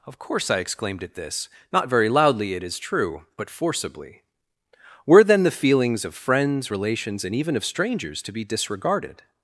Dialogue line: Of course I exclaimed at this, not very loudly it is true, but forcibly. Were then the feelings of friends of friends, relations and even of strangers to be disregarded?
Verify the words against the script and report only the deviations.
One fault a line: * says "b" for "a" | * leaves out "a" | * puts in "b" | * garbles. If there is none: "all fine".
* leaves out "of friends"